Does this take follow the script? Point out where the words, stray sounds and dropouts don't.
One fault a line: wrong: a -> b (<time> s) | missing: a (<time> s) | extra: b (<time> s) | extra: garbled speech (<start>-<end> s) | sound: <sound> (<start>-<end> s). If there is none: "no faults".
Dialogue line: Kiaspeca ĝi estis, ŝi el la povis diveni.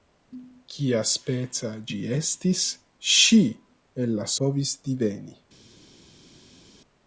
no faults